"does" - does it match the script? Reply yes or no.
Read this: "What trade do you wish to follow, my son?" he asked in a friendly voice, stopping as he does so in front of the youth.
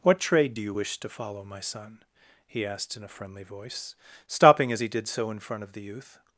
no